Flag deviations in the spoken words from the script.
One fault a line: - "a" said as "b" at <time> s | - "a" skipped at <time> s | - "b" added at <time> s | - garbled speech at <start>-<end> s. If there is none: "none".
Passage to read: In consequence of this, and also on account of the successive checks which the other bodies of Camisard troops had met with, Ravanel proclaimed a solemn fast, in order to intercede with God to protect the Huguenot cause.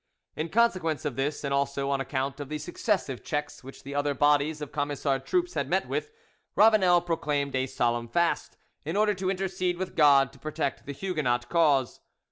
none